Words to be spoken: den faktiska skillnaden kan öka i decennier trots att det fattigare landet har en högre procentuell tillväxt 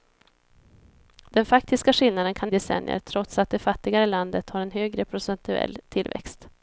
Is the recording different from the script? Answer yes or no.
yes